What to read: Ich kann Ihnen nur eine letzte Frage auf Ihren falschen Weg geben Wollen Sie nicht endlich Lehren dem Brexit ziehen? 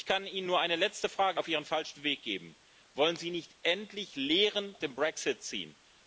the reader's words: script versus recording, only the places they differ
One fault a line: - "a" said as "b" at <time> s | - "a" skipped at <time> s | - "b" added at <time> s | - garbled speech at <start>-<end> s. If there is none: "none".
none